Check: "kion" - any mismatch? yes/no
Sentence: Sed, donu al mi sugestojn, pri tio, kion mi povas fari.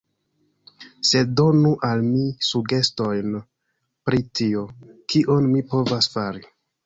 no